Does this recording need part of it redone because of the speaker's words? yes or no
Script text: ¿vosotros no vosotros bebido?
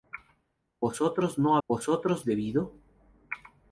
no